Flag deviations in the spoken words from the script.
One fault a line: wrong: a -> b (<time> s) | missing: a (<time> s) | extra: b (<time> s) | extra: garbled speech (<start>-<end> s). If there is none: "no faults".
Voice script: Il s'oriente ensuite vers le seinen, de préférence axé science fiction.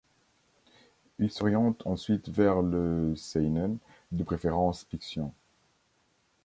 missing: axé science (4.9 s)